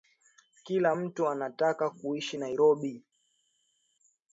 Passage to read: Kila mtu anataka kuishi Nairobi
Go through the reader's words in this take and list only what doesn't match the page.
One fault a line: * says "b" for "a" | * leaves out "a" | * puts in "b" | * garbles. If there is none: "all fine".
all fine